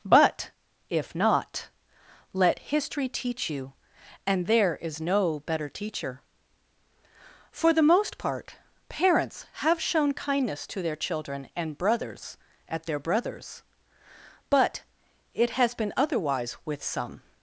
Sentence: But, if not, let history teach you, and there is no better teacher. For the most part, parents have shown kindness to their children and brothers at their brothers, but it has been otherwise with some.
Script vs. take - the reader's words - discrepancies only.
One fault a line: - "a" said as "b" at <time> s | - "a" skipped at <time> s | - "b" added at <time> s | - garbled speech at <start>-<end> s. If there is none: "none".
none